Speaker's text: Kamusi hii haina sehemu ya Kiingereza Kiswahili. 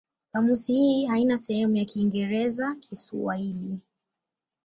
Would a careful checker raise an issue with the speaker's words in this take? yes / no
no